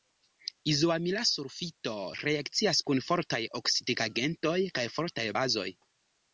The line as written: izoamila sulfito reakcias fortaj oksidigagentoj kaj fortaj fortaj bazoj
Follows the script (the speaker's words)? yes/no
no